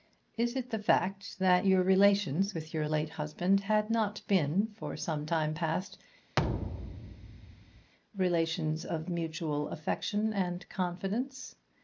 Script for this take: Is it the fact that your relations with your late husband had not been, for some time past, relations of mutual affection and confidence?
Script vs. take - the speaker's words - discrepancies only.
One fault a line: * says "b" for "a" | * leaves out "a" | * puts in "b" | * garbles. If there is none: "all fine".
all fine